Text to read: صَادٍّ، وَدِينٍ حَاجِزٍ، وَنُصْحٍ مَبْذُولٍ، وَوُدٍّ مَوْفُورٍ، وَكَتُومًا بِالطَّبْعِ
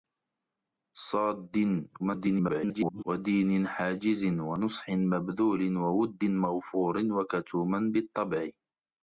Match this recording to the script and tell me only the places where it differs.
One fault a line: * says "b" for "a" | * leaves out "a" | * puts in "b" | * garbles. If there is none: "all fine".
* garbles